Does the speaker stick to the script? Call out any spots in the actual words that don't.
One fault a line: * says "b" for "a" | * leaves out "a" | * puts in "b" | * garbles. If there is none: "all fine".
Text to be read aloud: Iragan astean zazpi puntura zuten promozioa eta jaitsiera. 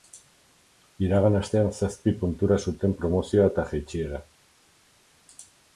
all fine